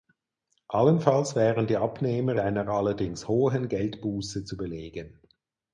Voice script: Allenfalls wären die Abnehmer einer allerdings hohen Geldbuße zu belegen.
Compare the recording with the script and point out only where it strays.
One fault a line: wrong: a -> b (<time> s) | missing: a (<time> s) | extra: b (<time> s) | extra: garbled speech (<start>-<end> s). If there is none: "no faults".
no faults